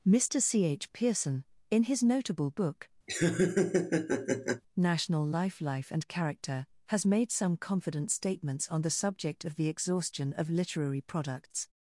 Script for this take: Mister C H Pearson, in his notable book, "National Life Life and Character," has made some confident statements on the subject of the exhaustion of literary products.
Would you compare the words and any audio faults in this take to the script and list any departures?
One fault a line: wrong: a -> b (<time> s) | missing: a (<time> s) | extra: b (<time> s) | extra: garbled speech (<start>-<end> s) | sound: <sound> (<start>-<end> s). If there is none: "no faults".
sound: laugh (3.1-4.6 s)